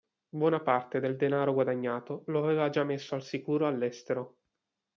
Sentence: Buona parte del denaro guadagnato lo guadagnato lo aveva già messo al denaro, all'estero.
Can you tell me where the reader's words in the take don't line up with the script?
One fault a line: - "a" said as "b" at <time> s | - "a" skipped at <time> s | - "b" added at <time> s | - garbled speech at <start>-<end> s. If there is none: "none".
- "guadagnato lo" skipped at 2.4 s
- "denaro" said as "sicuro" at 3.2 s